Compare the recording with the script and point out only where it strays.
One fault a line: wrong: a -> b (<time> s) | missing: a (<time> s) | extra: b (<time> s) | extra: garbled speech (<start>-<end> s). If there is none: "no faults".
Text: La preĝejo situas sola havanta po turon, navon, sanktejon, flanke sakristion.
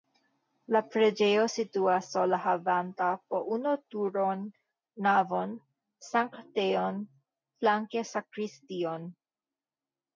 extra: unu (3.6 s)